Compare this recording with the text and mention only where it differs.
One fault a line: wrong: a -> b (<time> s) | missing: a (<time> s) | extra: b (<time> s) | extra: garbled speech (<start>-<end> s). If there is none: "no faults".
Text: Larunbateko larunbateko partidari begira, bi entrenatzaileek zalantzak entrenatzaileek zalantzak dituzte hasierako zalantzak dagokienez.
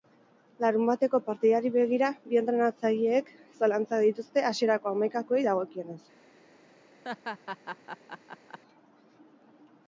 missing: larunbateko (1.2 s)
missing: entrenatzaileek zalantzak (4.1 s)
wrong: zalantzak -> hamaikakoei (4.9 s)